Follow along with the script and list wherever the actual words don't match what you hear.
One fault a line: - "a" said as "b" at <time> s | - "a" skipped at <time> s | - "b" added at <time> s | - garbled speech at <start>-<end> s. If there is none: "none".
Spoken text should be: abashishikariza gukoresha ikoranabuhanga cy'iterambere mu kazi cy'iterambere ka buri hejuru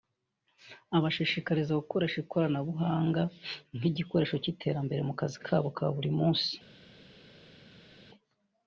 - "nk'igikoresho" added at 3.8 s
- "cy'iterambere" said as "kabo" at 5.5 s
- "hejuru" said as "munsi" at 6.2 s